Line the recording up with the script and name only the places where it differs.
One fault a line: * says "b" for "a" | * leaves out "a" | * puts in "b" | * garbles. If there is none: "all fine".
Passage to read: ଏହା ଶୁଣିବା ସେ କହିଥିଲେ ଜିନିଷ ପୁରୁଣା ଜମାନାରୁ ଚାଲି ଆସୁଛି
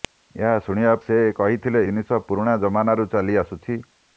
all fine